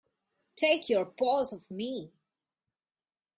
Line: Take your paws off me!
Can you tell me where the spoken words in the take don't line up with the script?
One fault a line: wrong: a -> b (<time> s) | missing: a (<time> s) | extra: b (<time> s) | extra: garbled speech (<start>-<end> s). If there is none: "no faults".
no faults